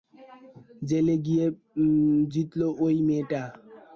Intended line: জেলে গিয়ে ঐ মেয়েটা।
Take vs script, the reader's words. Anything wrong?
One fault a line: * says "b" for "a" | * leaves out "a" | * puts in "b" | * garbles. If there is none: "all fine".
* puts in "জিতল"